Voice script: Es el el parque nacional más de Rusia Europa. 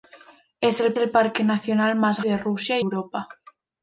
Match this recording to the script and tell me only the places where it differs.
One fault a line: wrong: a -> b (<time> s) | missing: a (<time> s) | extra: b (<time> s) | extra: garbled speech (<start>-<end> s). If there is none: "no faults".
no faults